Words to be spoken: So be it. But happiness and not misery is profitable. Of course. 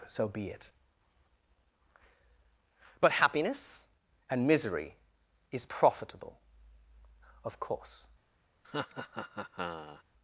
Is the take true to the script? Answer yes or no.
no